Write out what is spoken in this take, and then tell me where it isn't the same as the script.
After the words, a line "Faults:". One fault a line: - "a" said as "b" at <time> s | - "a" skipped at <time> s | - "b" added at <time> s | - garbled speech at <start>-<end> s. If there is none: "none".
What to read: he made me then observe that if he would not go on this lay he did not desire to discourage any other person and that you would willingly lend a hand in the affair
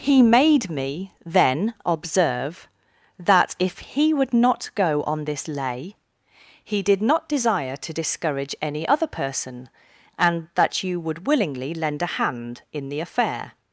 he made me then observe that if he would not go on this lay he did not desire to discourage any other person and that you would willingly lend a hand in the affair
Faults:
none